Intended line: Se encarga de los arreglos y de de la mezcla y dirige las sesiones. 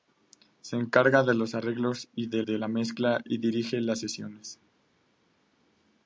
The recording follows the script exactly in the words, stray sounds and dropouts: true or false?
true